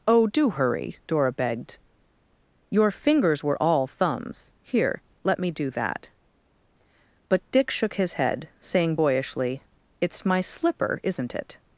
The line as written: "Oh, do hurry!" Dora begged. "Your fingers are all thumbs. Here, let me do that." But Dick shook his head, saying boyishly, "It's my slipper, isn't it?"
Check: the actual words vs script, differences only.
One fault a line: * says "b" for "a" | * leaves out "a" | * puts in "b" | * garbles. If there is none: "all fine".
* says "were" for "are"